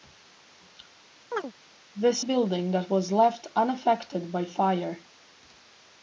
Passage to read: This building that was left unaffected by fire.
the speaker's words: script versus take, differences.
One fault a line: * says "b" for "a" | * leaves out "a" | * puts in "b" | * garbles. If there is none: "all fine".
all fine